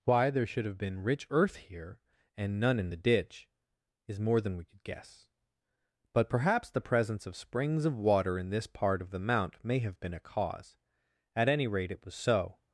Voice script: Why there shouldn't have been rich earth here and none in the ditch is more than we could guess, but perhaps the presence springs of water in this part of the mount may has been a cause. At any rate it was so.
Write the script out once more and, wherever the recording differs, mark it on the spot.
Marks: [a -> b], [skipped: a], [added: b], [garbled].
Why there [shouldn't -> should] have been rich earth here and none in the ditch is more than we could guess, but perhaps the presence [added: of] springs of water in this part of the mount may [has -> have] been a cause. At any rate it was so.